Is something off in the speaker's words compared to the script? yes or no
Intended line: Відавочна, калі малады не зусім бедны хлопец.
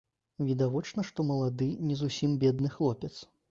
yes